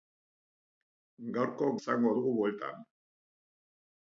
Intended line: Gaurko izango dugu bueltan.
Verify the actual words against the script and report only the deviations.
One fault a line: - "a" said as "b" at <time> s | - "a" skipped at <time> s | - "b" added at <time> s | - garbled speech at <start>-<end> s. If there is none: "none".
none